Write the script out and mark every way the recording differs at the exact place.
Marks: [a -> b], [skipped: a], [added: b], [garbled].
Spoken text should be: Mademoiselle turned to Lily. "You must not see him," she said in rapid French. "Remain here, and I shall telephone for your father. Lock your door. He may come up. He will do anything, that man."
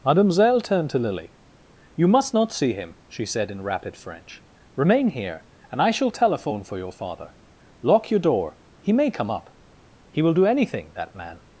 Mademoiselle turned to Lily. "You must not see him," she said in rapid French. "Remain here, and I shall telephone for your father. Lock your door. He may come up. He will do anything, that man."